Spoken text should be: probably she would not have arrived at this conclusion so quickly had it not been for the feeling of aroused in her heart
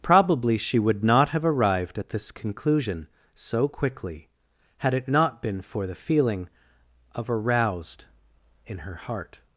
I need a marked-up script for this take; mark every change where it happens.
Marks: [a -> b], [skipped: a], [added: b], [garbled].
probably she would not have arrived at this conclusion so quickly had it not been for the feeling of aroused in her heart